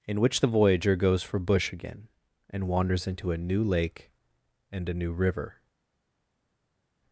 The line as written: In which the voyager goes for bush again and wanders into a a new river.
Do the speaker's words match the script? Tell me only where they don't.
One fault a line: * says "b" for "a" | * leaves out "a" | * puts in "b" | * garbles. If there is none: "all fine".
* puts in "new lake and"